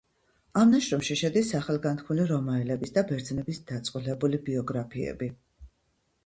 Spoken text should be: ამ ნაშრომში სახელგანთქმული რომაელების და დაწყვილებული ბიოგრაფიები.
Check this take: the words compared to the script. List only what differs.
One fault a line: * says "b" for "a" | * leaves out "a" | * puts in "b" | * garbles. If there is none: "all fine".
* puts in "შედის"
* puts in "ბერძნების"